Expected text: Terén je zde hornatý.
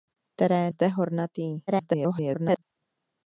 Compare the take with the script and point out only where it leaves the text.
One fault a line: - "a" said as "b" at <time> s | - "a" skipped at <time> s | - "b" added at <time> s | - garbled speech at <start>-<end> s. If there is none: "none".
- "je" skipped at 0.7 s
- garbled speech at 1.7-2.6 s